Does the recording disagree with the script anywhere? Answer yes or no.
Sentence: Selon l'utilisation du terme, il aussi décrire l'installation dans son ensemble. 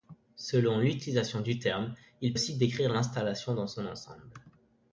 no